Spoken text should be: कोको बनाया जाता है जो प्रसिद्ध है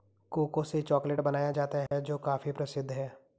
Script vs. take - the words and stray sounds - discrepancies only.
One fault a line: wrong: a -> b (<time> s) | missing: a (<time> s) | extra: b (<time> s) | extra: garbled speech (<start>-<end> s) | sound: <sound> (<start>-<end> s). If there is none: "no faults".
extra: से चॉकलेट (0.6 s)
sound: dropout (1.9-1.9 s)
extra: काफी (2.2 s)